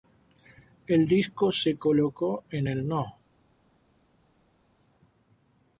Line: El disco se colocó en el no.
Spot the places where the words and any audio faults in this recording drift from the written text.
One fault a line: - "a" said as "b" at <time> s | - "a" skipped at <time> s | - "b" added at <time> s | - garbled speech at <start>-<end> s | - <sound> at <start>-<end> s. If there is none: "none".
none